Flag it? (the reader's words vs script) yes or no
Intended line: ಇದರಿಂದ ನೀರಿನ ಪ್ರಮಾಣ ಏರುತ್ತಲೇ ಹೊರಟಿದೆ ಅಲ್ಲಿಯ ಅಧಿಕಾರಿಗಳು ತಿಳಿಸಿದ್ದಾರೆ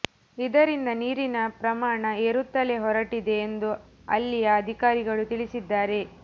yes